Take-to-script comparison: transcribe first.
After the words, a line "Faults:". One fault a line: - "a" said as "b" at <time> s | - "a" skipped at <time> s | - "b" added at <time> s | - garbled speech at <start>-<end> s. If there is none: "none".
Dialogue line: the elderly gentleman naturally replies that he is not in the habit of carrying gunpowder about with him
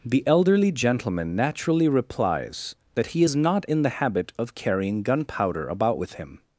the elderly gentleman naturally replies that he is not in the habit of carrying gunpowder about with him
Faults:
none